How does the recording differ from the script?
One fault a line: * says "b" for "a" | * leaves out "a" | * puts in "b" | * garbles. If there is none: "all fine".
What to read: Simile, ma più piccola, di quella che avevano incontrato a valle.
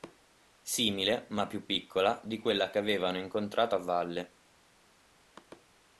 all fine